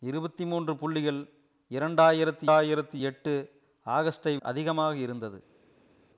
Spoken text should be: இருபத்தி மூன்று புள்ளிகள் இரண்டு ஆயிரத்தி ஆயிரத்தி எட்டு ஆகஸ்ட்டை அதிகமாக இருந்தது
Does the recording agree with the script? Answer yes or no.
yes